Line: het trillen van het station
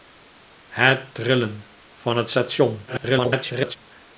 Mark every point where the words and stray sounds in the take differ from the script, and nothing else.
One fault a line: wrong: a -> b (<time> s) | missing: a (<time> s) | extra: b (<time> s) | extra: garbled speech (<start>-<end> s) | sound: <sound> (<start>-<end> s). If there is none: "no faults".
extra: garbled speech (2.9-3.8 s)